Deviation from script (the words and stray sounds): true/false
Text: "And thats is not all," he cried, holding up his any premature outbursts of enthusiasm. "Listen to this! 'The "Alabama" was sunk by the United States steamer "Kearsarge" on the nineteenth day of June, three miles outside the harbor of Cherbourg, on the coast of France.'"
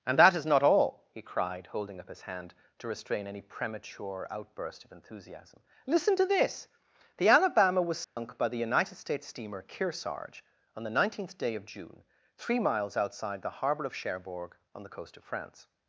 true